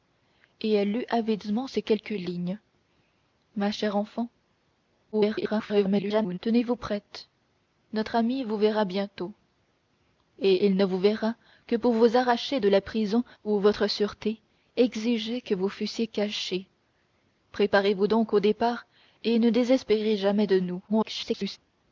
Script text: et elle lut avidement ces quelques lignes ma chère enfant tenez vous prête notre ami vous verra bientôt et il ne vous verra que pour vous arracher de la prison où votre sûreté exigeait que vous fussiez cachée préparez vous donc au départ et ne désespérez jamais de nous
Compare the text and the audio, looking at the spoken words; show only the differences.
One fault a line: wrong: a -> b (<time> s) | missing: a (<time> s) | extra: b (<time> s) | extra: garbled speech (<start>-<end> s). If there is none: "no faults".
extra: garbled speech (5.1-6.4 s)
extra: garbled speech (20.9-21.6 s)